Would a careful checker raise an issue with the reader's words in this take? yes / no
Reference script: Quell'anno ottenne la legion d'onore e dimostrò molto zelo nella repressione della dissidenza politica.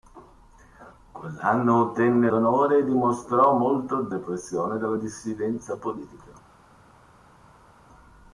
yes